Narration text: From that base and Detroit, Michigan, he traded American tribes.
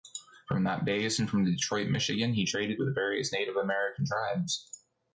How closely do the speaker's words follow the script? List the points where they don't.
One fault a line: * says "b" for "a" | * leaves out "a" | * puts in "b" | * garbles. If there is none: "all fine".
* puts in "from"
* puts in "with various Native"